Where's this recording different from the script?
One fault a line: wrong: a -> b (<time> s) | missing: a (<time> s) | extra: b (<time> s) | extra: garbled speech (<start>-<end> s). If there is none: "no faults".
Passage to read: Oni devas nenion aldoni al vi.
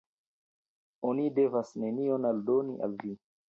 no faults